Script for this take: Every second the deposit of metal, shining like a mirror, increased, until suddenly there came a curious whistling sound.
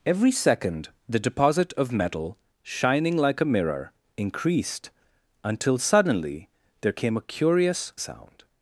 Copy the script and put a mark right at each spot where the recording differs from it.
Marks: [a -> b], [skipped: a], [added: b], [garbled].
Every second the deposit of metal, shining like a mirror, increased, until suddenly there came a curious [skipped: whistling] sound.